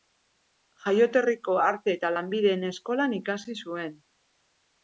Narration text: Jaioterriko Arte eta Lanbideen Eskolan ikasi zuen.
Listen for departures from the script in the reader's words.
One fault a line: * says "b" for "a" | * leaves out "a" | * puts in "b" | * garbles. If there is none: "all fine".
all fine